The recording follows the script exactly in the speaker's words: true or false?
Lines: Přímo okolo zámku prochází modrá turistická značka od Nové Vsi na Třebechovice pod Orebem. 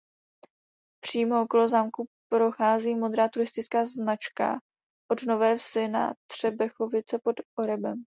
true